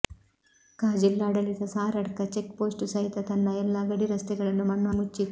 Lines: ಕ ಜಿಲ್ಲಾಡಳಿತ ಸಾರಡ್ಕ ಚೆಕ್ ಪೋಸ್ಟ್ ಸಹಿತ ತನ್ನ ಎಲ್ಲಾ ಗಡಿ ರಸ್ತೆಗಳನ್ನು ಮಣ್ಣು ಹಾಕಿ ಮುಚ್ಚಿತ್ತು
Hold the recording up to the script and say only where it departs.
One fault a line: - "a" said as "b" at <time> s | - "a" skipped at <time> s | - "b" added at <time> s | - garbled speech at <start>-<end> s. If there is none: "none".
- "ಹಾಕಿ" skipped at 4.9 s